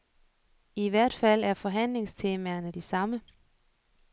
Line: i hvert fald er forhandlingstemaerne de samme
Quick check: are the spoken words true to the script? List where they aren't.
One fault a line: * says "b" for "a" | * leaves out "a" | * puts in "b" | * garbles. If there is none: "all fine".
all fine